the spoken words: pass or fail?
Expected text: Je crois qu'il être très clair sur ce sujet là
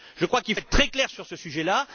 pass